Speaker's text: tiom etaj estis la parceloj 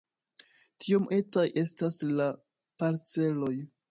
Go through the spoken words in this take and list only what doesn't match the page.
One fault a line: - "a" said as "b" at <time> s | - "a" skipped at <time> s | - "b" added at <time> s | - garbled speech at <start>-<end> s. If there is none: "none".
- "estis" said as "estas" at 1.6 s